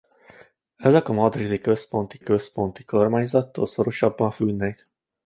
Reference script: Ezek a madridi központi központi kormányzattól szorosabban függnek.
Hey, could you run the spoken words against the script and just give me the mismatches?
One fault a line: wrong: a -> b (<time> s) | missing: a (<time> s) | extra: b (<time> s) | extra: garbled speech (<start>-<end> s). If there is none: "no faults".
no faults